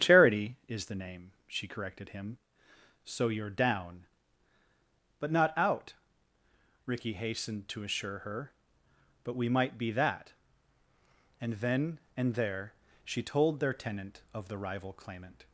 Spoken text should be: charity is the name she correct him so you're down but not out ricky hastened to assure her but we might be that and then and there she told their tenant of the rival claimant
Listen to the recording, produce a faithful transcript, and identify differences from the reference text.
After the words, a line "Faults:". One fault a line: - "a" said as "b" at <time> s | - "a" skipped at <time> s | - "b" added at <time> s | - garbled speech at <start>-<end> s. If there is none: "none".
charity is the name she corrected him so you're down but not out ricky hastened to assure her but we might be that and then and there she told their tenant of the rival claimant
Faults:
- "correct" said as "corrected" at 1.7 s